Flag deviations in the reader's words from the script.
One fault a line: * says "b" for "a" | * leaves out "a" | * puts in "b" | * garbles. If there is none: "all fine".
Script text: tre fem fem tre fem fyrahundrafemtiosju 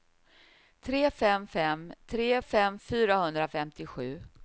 all fine